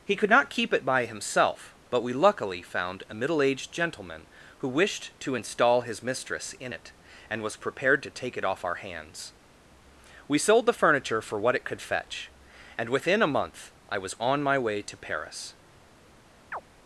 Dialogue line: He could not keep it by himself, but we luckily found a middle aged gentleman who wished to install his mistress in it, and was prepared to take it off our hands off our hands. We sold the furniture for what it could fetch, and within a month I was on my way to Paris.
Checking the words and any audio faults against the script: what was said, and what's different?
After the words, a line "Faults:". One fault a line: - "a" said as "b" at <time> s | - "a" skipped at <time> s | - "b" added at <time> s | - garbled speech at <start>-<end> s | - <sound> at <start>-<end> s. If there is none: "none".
He could not keep it by himself, but we luckily found a middle aged gentleman who wished to install his mistress in it, and was prepared to take it off our hands. We sold the furniture for what it could fetch, and within a month I was on my way to Paris.
Faults:
- "off our hands" skipped at 9.3 s
- chirp at 16.5-16.6 s